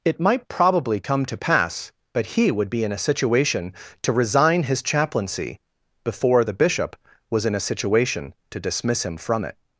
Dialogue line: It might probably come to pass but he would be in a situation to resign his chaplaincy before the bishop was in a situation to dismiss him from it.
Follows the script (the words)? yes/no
yes